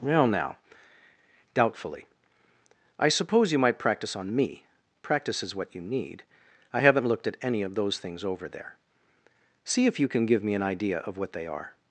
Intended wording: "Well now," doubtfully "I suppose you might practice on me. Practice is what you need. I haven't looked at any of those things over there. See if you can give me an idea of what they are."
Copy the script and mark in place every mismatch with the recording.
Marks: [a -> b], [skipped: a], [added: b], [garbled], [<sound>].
"Well now," doubtfully "I suppose you might practice on me. Practice is what you need. I haven't looked at any of those things over there. See if you can give me an idea of what they are."